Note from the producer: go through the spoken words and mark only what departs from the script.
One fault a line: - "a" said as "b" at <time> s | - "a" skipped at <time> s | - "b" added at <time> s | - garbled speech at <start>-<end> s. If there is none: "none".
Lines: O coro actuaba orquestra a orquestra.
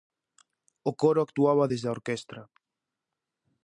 - "orquestra" said as "desde" at 1.7 s